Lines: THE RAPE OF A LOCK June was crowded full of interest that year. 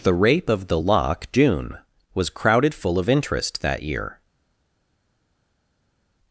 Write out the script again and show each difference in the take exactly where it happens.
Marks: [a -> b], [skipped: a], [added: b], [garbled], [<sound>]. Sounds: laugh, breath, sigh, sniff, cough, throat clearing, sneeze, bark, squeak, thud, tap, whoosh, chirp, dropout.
THE RAPE OF [A -> THE] LOCK June was crowded full of interest that year.